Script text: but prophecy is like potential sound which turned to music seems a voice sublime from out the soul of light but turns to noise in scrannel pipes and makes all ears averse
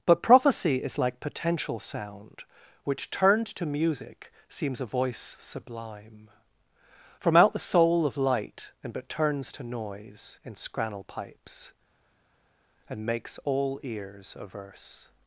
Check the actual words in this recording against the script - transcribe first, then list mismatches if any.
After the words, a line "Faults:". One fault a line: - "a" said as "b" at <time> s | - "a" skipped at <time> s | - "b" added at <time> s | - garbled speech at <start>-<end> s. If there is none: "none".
but prophecy is like potential sound which turned to music seems a voice sublime from out the soul of light and but turns to noise in scrannel pipes and makes all ears averse
Faults:
- "and" added at 8.8 s